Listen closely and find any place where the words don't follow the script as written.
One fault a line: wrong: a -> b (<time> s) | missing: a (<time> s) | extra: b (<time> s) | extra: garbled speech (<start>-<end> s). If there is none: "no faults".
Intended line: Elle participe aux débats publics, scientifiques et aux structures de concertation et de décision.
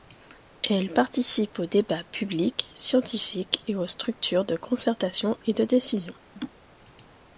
no faults